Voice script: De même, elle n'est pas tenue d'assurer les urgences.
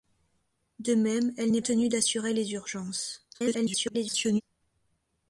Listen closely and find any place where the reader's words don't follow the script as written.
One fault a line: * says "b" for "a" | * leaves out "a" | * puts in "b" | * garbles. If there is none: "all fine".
* leaves out "pas"
* garbles